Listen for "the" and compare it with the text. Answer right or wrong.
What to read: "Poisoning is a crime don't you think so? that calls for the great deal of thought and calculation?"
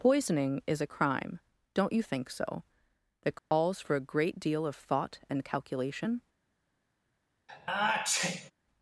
wrong